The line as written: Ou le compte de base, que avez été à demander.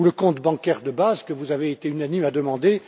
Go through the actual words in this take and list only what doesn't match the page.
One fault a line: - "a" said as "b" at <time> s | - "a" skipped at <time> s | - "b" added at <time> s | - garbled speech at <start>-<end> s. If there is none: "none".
- "bancaire" added at 0.4 s
- "vous" added at 1.3 s
- "unanimes" added at 1.9 s